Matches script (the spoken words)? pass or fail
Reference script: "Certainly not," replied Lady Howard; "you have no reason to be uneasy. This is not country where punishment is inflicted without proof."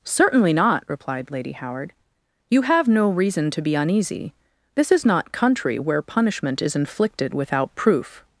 pass